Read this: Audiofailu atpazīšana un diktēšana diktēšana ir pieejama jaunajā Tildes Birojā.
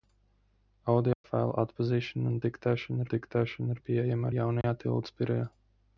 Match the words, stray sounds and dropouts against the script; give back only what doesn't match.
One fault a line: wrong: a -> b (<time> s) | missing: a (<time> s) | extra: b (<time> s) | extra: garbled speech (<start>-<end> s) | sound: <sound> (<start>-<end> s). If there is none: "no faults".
sound: dropout (1.1-1.2 s)
sound: dropout (4.6-4.6 s)